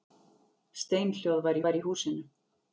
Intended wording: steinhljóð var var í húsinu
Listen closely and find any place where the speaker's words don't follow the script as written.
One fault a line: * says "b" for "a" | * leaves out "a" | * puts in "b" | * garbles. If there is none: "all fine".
all fine